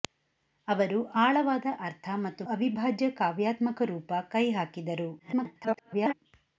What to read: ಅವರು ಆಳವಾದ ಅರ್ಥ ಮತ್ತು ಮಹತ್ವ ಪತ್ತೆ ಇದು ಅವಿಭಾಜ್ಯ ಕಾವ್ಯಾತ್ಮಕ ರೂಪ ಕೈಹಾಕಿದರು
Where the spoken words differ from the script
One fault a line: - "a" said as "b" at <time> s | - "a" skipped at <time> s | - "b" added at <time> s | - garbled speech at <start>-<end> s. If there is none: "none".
- "ಮಹತ್ವ ಪತ್ತೆ ಇದು" skipped at 2.4 s
- garbled speech at 5.2-6.1 s